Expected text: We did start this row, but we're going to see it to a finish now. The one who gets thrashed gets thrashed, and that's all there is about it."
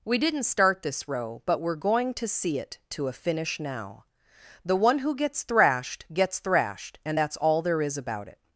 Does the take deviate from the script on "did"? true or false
true